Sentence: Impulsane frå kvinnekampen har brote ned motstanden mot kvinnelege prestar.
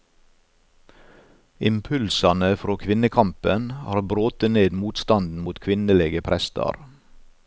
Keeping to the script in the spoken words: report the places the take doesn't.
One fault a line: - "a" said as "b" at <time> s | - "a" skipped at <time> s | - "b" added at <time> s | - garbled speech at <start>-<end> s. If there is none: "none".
none